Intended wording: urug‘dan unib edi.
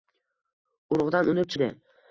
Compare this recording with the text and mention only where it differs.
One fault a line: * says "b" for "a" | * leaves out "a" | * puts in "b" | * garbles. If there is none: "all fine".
all fine